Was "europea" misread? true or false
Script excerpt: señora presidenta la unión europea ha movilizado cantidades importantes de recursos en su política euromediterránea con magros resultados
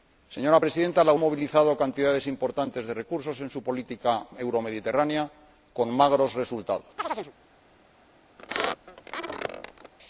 true